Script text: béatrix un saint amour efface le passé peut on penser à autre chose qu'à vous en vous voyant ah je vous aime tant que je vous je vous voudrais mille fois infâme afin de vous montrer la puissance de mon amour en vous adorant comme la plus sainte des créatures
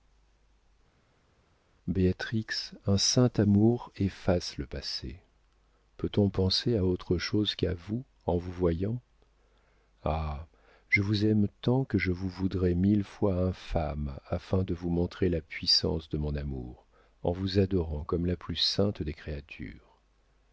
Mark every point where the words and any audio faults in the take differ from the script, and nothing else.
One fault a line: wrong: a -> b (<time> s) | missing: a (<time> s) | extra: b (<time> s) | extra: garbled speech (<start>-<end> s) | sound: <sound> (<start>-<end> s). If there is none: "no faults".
missing: je vous (12.3 s)